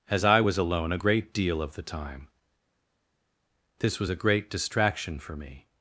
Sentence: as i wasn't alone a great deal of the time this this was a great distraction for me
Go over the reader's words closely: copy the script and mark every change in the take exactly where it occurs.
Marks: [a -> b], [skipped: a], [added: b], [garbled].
as i [wasn't -> was] alone a great deal of the time this [skipped: this] was a great distraction for me